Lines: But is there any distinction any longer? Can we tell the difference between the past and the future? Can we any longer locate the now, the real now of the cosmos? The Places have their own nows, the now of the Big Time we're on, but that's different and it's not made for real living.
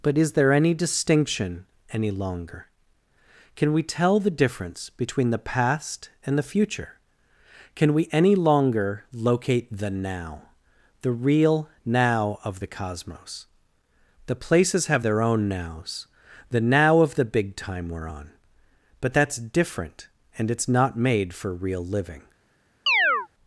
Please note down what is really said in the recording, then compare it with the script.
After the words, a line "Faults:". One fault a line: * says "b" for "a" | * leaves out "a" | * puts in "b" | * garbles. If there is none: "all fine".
But is there any distinction any longer? Can we tell the difference between the past and the future? Can we any longer locate the now, the real now of the cosmos? The Places have their own nows, the now of the Big Time we're on, but that's different and it's not made for real living.
Faults:
all fine